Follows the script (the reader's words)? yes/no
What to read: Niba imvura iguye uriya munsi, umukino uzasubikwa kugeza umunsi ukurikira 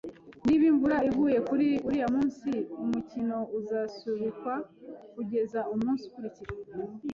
no